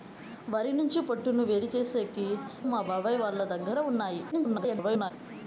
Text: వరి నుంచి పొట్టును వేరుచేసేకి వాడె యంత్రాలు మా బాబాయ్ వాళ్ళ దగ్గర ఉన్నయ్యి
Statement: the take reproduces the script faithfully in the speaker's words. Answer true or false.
false